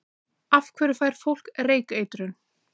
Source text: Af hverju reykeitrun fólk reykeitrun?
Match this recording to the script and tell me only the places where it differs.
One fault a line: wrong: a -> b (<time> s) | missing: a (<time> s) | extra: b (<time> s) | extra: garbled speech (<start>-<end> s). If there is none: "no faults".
wrong: reykeitrun -> fær (1.0 s)